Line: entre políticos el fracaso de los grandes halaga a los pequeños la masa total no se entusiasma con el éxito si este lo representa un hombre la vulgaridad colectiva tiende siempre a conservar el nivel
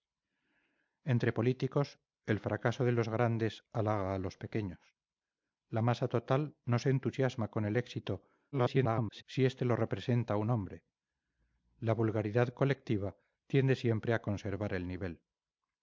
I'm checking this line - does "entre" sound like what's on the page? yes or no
yes